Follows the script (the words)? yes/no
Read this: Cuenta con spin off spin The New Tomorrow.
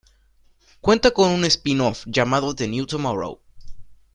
no